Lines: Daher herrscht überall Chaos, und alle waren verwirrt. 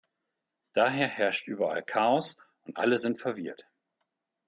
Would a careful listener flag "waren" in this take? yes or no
yes